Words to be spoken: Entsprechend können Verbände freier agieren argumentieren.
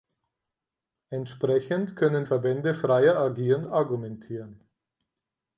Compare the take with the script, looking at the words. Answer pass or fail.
pass